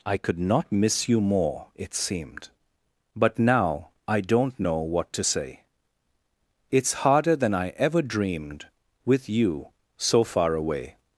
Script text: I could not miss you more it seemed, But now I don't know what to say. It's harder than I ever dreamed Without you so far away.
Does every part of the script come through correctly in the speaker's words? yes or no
no